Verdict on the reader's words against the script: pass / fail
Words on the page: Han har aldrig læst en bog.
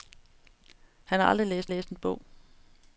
fail